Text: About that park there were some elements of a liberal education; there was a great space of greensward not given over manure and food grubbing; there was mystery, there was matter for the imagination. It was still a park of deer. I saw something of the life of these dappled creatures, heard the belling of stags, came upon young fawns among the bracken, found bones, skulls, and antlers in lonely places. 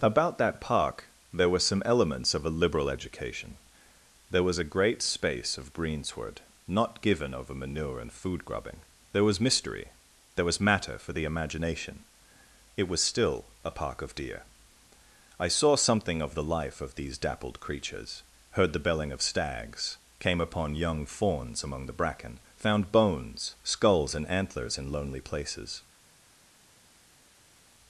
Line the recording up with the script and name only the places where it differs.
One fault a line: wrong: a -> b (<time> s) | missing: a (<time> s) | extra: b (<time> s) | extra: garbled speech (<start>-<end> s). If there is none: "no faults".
no faults